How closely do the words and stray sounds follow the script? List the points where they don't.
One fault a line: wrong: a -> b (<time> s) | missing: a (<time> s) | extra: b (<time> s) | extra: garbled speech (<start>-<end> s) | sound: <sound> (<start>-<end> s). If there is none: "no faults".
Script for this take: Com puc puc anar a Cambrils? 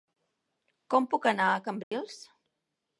missing: puc (1.3 s)
sound: dropout (1.8-1.9 s)